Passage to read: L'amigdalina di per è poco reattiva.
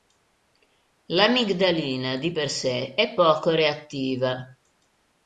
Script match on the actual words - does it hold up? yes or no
no